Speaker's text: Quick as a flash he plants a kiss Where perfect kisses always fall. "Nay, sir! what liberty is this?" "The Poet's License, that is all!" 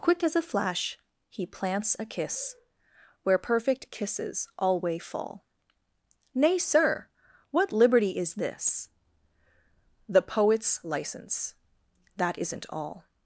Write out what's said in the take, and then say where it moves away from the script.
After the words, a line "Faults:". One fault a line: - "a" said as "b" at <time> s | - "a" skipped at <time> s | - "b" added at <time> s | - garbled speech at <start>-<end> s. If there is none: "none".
Quick as a flash he plants a kiss Where perfect kisses alway fall. "Nay, sir! what liberty is this?" "The Poet's License, that isn't all!"
Faults:
- "always" said as "alway" at 4.6 s
- "is" said as "isn't" at 12.4 s